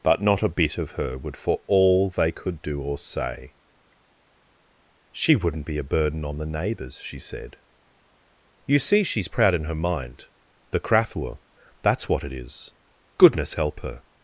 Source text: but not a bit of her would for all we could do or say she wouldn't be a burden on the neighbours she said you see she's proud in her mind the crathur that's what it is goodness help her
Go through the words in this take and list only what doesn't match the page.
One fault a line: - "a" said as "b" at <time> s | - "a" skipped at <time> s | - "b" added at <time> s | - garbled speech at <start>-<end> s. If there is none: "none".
- "we" said as "they" at 2.1 s